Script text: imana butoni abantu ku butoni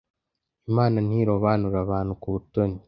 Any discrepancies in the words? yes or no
yes